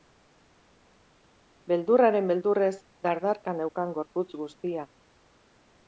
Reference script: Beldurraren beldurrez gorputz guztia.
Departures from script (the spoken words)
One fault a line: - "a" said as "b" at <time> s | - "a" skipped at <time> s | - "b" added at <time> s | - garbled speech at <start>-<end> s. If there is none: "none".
- "dardarka neukan" added at 3.1 s